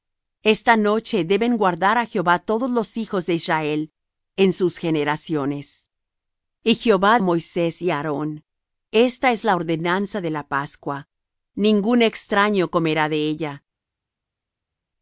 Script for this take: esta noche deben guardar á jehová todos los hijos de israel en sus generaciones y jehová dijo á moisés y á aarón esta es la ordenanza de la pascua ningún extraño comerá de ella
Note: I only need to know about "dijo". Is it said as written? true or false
false